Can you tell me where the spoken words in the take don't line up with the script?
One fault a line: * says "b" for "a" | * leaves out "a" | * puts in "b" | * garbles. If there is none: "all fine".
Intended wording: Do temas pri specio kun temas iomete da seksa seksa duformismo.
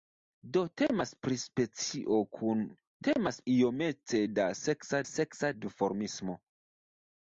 all fine